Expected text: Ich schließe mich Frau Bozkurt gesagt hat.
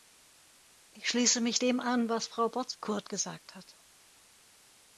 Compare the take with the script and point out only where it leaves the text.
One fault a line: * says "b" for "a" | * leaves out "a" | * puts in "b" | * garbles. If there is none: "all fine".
* puts in "dem an was"